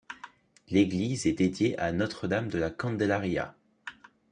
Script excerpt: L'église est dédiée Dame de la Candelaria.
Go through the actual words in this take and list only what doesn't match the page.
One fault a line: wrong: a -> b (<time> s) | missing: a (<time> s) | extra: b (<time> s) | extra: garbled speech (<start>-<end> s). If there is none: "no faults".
extra: à Notre (1.8 s)